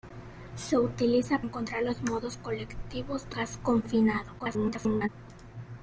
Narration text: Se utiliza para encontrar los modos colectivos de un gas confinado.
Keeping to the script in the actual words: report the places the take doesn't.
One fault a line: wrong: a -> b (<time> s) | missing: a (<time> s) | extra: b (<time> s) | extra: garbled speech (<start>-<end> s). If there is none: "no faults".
missing: para (1.4 s)
missing: un (3.4 s)
extra: garbled speech (4.4-5.1 s)